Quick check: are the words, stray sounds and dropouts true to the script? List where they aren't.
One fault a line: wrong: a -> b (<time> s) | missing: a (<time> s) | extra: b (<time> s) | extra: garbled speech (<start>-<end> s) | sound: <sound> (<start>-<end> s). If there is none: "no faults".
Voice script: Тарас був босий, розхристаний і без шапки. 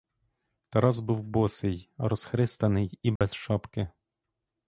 sound: dropout (3.2-3.2 s)